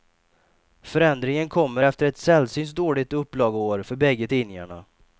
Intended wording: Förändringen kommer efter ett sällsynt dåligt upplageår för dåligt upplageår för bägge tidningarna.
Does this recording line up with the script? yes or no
no